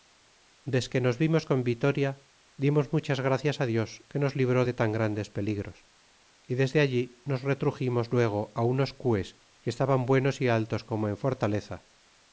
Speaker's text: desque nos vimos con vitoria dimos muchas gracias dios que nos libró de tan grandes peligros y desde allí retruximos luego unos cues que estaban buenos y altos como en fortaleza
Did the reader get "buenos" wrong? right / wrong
right